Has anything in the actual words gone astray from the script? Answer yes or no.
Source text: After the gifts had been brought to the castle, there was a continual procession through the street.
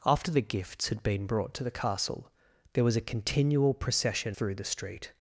no